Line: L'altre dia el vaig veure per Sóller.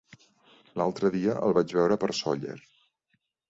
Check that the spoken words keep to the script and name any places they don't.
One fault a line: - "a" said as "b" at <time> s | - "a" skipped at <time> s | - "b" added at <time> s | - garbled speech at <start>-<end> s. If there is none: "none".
none